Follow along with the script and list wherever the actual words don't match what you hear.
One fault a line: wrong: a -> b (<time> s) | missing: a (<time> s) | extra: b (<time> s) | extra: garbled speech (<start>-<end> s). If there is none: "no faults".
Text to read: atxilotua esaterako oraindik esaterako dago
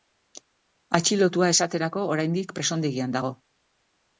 wrong: esaterako -> presondegian (2.6 s)